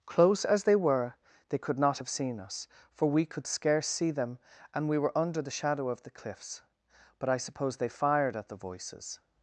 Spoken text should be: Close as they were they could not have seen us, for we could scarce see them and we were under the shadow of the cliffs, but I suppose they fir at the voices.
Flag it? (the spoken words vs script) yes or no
yes